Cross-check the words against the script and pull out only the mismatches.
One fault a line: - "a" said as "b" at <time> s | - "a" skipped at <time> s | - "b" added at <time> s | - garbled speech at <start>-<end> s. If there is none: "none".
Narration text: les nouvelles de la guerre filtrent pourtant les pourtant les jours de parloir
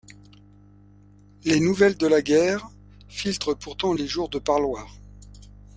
- "pourtant les" skipped at 4.1 s